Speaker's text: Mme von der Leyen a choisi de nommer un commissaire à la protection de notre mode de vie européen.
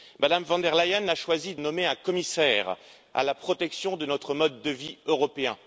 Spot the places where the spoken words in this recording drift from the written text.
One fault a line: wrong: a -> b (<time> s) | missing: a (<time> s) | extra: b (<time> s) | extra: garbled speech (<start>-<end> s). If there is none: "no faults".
missing: de (1.6 s)